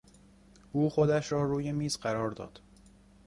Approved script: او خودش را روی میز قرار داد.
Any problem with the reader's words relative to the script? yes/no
no